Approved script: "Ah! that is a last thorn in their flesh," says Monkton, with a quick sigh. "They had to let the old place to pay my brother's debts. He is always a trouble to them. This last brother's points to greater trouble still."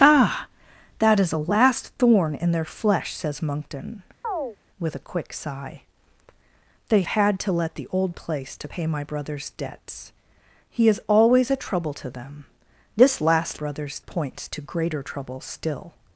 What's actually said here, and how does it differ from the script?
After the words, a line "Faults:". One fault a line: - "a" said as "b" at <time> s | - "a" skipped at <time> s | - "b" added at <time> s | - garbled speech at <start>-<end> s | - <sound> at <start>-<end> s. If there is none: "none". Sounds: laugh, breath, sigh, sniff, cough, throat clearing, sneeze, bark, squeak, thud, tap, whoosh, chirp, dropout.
"Ah! that is a last thorn in their flesh," says Monkton, with a quick sigh. "They had to let the old place to pay my brother's debts. He is always a trouble to them. This last brother's points to greater trouble still."
Faults:
- chirp at 4.2-4.6 s